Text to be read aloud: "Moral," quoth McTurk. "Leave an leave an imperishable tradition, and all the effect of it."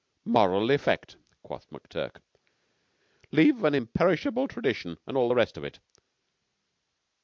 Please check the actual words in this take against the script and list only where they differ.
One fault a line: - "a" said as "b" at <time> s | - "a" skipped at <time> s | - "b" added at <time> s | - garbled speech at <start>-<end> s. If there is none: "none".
- "effect" added at 0.7 s
- "leave an" skipped at 3.8 s
- "effect" said as "rest" at 5.3 s